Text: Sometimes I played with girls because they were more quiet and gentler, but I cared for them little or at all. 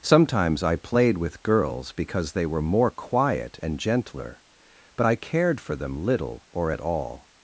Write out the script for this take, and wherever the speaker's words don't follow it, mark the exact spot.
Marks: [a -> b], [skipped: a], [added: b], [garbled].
Sometimes I played with girls because they were more quiet and gentler, but I cared for them little or at all.